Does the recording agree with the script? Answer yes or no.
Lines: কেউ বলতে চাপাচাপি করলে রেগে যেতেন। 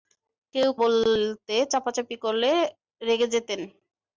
yes